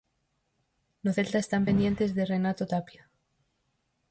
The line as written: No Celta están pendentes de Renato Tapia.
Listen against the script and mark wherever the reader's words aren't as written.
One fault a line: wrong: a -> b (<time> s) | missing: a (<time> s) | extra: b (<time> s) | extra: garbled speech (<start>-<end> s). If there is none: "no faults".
no faults